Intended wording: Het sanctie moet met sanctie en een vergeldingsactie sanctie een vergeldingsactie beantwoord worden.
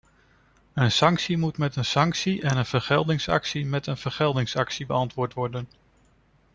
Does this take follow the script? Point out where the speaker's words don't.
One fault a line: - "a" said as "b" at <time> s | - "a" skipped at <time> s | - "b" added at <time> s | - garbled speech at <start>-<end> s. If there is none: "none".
- "Het" said as "Een" at 0.7 s
- "een" added at 1.8 s
- "sanctie" said as "met" at 3.6 s